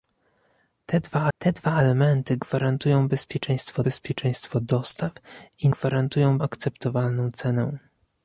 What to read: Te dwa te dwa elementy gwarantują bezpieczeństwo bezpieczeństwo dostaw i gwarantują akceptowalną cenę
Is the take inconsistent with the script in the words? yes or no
no